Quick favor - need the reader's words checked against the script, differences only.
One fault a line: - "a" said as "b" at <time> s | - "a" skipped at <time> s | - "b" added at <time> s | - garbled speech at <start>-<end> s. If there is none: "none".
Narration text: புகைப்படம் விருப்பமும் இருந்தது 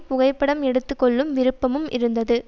- "எடுத்து கொள்ளும்" added at 0.6 s